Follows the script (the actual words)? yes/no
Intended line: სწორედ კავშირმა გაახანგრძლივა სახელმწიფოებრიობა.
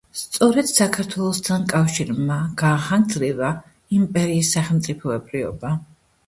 no